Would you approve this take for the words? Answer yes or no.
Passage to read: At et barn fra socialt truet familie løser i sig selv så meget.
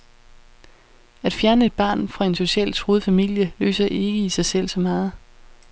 no